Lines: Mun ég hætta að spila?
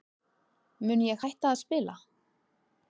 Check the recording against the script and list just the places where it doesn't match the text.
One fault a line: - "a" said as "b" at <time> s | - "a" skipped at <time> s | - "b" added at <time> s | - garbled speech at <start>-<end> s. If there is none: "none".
none